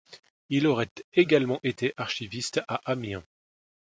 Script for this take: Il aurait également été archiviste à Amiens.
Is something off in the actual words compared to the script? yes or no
no